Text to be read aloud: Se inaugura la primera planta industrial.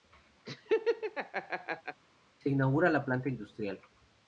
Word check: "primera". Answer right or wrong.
wrong